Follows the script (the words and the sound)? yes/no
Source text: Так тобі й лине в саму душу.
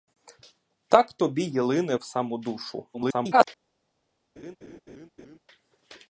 no